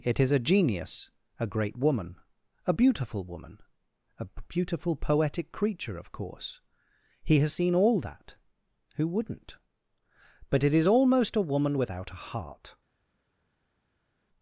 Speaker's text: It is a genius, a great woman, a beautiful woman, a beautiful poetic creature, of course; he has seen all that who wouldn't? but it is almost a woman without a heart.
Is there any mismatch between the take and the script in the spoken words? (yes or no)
no